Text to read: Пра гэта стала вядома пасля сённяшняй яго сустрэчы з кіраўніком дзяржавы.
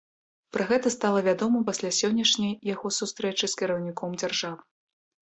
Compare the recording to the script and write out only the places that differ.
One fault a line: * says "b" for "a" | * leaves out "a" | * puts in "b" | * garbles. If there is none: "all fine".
all fine